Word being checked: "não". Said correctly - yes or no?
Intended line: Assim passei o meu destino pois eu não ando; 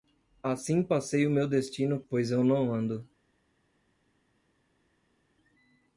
yes